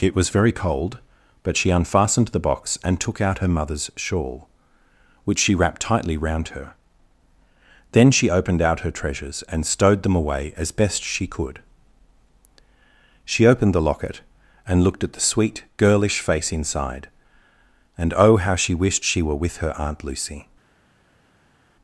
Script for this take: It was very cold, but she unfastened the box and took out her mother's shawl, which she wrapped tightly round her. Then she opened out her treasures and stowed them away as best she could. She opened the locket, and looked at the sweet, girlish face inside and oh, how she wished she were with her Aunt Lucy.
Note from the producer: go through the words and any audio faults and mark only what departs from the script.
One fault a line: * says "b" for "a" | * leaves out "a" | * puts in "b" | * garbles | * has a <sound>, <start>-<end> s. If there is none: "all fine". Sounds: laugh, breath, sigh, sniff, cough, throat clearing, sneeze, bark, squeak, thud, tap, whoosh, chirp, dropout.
all fine